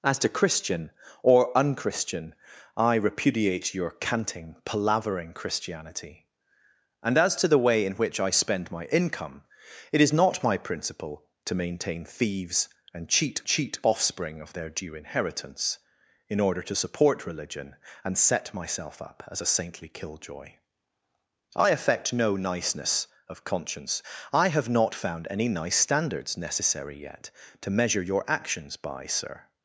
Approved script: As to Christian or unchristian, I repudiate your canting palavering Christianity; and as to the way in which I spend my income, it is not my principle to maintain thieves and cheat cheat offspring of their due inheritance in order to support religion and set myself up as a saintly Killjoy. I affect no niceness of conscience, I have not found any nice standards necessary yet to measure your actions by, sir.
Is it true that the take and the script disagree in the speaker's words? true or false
false